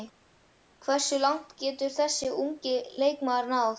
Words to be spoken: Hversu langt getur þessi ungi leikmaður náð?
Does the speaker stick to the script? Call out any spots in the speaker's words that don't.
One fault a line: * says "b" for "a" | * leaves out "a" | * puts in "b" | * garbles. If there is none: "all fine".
all fine